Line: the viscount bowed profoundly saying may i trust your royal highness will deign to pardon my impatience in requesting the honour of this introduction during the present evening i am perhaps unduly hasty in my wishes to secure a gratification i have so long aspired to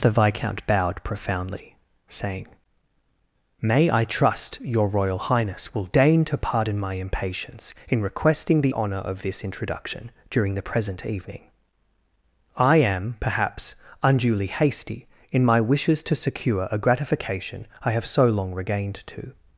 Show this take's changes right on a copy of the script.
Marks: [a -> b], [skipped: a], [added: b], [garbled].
the viscount bowed profoundly saying may i trust your royal highness will deign to pardon my impatience in requesting the honour of this introduction during the present evening i am perhaps unduly hasty in my wishes to secure a gratification i have so long [aspired -> regained] to